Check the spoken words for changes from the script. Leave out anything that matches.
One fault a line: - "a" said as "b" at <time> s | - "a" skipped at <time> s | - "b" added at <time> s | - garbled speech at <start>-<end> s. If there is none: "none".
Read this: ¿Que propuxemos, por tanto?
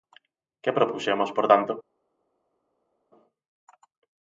none